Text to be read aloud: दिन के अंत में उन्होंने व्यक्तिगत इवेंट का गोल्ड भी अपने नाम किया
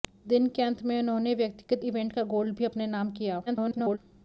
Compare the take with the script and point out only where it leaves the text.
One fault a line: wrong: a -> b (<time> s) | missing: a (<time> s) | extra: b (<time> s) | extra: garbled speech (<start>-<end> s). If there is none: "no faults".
extra: garbled speech (3.5-4.0 s)